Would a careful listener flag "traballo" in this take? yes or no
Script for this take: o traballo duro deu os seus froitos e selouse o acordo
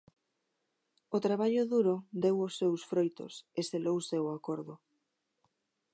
no